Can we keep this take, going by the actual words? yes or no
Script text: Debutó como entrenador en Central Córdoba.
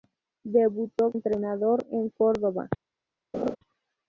no